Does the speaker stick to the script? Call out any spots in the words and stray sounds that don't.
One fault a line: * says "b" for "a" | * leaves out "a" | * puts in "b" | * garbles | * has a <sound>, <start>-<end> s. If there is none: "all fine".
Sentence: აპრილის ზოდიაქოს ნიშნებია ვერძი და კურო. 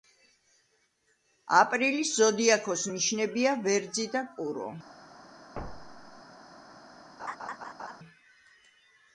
* has a thud, 5.6-6.2 s
* has a laugh, 7.2-8.0 s